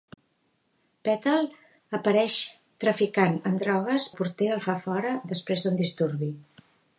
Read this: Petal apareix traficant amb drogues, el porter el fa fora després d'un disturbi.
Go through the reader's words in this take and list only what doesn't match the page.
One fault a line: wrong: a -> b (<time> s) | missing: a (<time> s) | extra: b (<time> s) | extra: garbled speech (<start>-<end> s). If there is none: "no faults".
no faults